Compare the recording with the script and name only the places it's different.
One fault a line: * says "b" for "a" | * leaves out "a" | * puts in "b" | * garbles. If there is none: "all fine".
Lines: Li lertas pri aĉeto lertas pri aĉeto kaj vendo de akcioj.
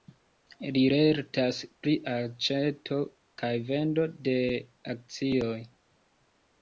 * leaves out "lertas pri aĉeto"